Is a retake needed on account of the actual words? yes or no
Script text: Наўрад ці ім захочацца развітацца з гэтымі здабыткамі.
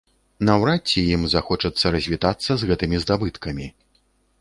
no